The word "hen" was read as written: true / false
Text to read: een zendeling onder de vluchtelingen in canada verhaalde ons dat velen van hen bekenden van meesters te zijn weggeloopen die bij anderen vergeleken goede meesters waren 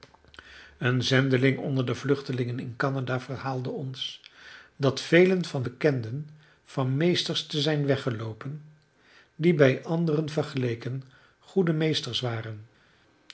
false